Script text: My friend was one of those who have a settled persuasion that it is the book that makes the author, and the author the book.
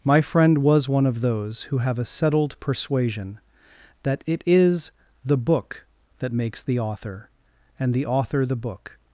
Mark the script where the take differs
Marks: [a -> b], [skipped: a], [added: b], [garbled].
My friend was one of those who have a settled persuasion that it is the book that makes the author, and the author the book.